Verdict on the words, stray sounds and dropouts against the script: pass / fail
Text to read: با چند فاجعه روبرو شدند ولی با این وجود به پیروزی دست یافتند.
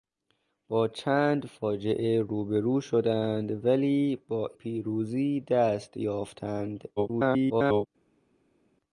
fail